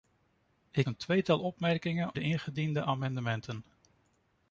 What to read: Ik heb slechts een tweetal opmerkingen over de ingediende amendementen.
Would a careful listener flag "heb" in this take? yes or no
yes